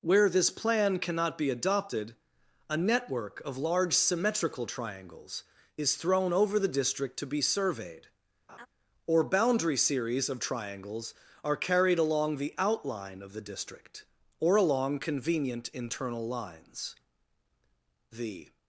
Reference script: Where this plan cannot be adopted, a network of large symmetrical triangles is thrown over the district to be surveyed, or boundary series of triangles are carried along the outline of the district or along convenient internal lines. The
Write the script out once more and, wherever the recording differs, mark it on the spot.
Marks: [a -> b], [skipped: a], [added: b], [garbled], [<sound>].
Where this plan cannot be adopted, a network of large symmetrical triangles is thrown over the district to be surveyed, [laugh] or boundary series of triangles are carried along the outline of the district or along convenient internal lines. The